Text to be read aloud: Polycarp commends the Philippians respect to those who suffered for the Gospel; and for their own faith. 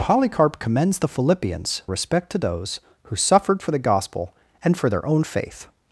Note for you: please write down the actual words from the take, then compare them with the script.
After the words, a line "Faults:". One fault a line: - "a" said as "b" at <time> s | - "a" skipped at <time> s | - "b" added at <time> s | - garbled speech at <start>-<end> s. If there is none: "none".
Polycarp commends the Philippians respect to those who suffered for the Gospel; and for their own faith.
Faults:
none